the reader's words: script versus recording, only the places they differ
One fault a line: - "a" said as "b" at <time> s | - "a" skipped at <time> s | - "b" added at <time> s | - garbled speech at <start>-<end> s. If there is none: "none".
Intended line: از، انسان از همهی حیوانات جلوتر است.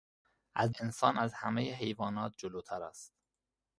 none